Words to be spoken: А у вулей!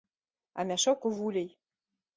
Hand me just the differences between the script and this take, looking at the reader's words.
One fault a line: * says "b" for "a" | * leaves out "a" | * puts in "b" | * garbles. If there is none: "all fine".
* puts in "мяшок"